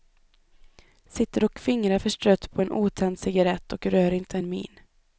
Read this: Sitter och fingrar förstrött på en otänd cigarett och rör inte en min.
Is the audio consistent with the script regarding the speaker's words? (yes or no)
yes